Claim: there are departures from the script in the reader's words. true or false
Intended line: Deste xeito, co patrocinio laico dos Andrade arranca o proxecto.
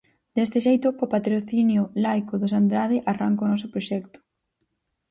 true